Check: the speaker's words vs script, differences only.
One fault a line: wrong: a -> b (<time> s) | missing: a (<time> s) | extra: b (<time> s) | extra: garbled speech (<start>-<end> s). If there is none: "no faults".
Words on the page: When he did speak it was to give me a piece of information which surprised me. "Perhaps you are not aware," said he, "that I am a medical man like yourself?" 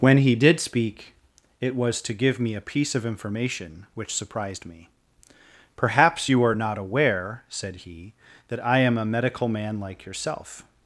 no faults